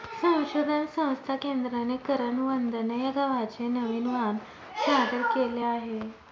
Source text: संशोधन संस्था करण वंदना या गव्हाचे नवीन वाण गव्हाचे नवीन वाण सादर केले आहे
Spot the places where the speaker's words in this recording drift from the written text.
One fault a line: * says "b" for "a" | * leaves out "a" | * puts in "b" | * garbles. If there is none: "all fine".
* puts in "केंद्राने"
* leaves out "गव्हाचे नवीन वाण"